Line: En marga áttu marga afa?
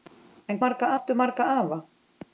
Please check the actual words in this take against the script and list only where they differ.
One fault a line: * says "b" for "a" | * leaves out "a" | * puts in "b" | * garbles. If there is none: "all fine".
all fine